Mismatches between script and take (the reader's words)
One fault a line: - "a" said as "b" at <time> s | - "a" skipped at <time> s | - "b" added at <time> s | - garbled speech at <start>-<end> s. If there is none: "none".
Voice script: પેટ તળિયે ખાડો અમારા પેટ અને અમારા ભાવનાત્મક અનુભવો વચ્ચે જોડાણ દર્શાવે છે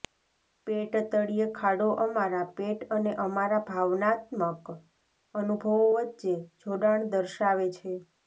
none